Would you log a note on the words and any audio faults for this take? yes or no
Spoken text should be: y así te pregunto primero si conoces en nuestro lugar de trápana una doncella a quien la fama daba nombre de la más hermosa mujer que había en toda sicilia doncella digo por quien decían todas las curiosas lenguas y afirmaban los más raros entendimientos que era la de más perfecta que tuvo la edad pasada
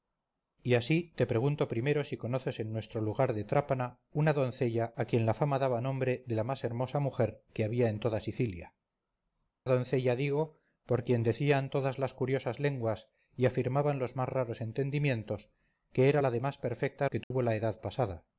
yes